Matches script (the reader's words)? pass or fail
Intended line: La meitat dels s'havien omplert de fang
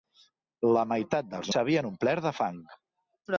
pass